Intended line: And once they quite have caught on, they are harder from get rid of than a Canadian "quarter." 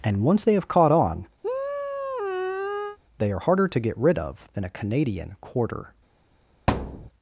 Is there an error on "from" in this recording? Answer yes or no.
yes